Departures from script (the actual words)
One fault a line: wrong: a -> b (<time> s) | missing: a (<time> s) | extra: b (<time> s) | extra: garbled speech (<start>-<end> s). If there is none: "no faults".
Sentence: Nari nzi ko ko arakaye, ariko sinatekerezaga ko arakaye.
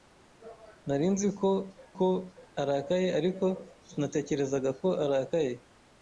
no faults